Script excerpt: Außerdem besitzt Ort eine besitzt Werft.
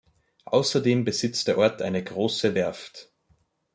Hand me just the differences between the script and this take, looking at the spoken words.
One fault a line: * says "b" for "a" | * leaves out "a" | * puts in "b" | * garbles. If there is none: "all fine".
* puts in "der"
* says "große" for "besitzt"